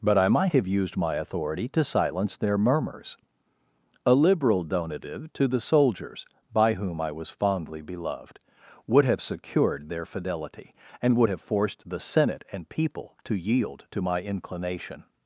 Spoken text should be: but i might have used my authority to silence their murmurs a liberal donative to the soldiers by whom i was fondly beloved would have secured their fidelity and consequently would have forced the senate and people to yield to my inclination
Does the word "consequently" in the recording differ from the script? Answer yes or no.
yes